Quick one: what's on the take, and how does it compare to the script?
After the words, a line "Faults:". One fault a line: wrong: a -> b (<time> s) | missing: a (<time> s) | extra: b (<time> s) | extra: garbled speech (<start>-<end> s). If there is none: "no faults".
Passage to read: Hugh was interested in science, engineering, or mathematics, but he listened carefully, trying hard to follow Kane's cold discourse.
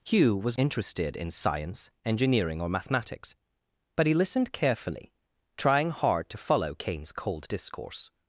Hugh was interested in science, engineering, or mathematics, but he listened carefully, trying hard to follow Kane's cold discourse.
Faults:
no faults